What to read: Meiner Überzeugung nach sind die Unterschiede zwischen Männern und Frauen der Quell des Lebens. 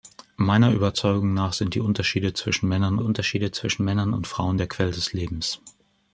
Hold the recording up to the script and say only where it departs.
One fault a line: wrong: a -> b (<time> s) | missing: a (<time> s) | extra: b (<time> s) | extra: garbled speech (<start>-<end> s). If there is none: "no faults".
extra: Unterschiede zwischen Männern (3.0 s)